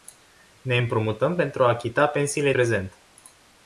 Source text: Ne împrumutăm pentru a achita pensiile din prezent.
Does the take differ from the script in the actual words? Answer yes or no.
yes